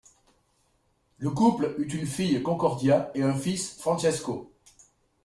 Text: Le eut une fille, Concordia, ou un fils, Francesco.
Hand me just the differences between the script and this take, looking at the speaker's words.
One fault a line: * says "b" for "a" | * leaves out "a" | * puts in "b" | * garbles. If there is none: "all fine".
* puts in "couple"
* says "et" for "ou"